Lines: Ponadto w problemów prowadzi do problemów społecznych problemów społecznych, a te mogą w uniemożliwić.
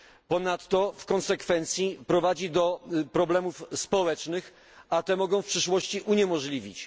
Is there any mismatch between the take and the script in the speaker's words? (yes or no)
yes